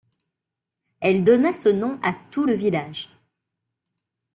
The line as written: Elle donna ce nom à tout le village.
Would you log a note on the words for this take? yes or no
no